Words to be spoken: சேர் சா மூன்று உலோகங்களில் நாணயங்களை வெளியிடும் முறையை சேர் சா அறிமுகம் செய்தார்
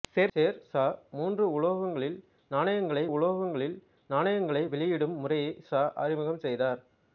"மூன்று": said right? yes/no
yes